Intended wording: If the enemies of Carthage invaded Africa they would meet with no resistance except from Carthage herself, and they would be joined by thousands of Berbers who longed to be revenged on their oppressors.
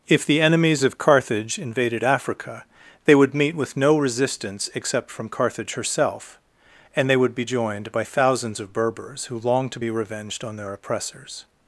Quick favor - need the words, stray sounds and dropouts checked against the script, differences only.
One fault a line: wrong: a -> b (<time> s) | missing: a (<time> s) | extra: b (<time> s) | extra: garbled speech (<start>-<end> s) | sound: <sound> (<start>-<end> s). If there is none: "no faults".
no faults